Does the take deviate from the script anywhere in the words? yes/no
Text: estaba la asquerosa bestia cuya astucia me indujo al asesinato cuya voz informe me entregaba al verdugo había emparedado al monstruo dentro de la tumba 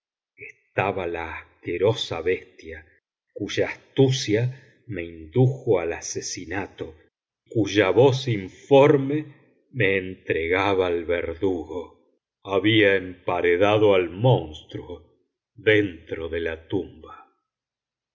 no